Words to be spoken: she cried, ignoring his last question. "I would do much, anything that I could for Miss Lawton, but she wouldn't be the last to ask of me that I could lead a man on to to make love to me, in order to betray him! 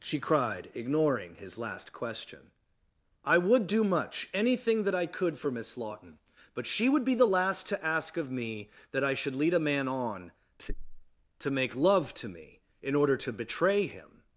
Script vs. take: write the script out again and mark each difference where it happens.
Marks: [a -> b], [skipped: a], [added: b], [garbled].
she cried, ignoring his last question. "I would do much, anything that I could for Miss Lawton, but she [wouldn't -> would] be the last to ask of me that I [could -> should] lead a man on to to make love to me, in order to betray him!